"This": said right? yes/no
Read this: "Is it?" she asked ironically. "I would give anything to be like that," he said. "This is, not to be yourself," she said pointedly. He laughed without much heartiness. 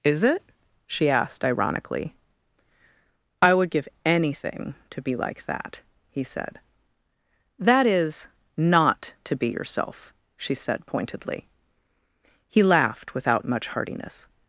no